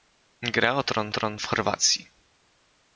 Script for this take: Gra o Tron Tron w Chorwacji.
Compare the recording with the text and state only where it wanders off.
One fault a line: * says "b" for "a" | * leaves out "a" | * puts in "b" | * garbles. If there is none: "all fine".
all fine